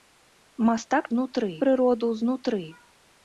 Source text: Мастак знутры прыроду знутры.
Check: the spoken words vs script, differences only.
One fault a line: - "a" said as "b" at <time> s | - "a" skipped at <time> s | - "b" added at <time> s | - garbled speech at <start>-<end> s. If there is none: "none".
none